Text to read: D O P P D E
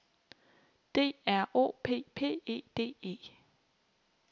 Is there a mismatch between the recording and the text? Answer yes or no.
yes